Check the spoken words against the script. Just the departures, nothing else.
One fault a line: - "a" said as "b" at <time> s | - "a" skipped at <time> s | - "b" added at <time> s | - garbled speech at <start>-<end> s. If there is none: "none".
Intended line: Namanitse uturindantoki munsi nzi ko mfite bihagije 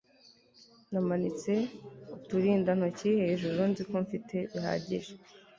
- "munsi" said as "hejuru" at 3.2 s